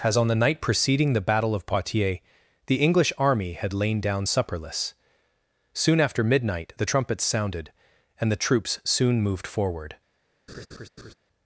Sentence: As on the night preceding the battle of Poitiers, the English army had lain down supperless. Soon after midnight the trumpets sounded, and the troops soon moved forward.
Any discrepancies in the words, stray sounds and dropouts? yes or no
yes